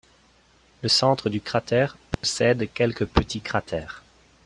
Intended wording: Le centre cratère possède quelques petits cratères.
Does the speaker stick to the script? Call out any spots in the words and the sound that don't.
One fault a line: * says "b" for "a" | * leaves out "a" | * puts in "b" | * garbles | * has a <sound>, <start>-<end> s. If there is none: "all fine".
* puts in "du"
* has a dropout, 2.1-2.2 s